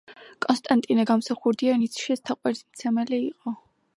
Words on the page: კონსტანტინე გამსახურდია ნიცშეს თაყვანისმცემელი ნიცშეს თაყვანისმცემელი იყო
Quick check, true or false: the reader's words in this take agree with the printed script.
false